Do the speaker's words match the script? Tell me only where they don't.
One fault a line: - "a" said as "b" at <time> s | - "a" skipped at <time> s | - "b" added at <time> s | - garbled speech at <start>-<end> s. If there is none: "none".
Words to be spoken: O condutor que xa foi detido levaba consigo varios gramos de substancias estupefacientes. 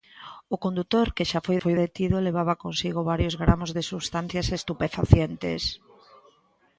- "foi" added at 1.6 s